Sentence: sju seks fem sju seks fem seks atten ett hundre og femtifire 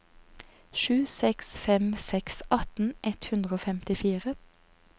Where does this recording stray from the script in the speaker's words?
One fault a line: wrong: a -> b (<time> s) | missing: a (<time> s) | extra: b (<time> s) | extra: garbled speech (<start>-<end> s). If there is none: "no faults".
missing: sju seks fem (1.9 s)